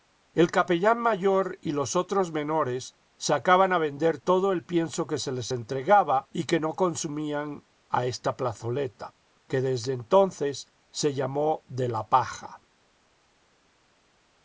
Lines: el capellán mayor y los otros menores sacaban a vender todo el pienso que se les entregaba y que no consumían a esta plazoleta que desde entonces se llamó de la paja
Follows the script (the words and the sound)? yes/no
yes